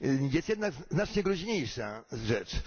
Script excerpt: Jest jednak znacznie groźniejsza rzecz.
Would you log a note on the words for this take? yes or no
no